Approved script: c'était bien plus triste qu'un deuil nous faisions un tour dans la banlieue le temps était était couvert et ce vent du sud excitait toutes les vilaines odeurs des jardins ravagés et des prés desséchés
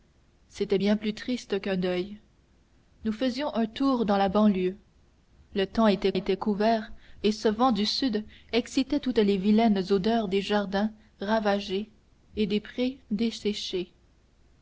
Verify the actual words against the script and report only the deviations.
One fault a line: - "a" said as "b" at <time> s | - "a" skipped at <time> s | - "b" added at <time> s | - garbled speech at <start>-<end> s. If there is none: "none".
none